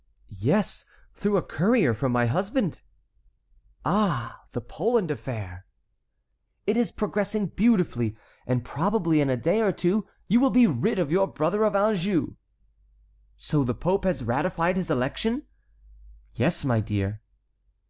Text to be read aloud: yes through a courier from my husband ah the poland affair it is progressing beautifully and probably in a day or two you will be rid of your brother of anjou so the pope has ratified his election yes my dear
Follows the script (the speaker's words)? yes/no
yes